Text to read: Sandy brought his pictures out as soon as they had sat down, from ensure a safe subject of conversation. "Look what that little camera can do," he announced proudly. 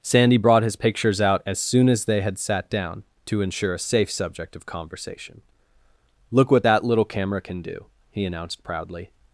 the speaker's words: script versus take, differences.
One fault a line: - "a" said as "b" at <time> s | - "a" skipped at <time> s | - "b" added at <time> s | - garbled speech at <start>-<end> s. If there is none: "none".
- "from" said as "to" at 3.3 s